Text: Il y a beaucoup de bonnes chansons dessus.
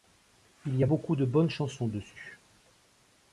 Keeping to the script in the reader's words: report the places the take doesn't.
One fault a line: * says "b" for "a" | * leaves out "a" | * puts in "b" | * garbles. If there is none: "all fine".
all fine